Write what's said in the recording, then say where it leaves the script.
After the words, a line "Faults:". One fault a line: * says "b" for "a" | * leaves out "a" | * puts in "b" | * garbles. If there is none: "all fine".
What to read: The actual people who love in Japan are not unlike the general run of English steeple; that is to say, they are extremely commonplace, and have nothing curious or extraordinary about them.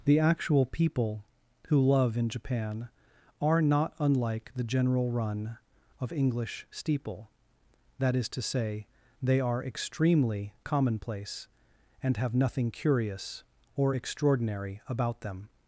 The actual people who love in Japan are not unlike the general run of English steeple; that is to say, they are extremely commonplace, and have nothing curious or extraordinary about them.
Faults:
all fine